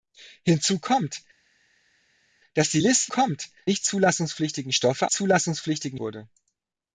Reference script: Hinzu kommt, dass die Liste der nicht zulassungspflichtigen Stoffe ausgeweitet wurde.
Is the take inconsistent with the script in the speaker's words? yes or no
yes